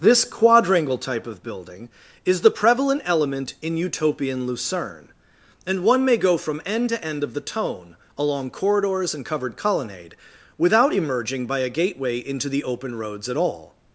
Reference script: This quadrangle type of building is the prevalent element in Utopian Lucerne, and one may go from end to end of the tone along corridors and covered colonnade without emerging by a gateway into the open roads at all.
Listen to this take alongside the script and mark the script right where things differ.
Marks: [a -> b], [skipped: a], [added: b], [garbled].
This quadrangle type of building is the prevalent element in Utopian Lucerne, and one may go from end to end of the tone along corridors and covered colonnade without emerging by a gateway into the open roads at all.